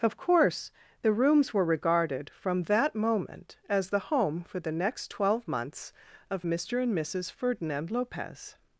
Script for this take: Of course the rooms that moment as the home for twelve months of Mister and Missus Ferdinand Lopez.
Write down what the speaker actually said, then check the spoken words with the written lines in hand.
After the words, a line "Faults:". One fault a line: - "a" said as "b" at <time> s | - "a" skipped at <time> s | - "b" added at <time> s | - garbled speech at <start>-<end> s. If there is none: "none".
Of course the rooms were regarded from that moment as the home for the next twelve months of Mister and Missus Ferdinand Lopez.
Faults:
- "were regarded from" added at 1.5 s
- "the next" added at 4.6 s